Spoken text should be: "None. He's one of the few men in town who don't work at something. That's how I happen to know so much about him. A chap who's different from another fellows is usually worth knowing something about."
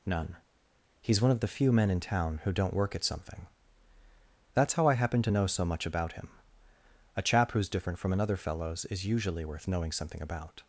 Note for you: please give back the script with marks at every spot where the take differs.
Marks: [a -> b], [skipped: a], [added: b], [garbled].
"None. He's one of the few men in town who don't work at something. That's how I happen to know so much about him. A chap who's different from another fellows is usually worth knowing something about."